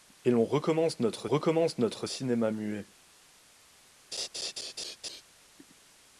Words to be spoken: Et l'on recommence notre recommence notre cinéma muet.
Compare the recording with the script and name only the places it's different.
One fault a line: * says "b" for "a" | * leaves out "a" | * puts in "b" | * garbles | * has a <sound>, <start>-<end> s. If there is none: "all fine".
* has a laugh, 4.1-5.2 s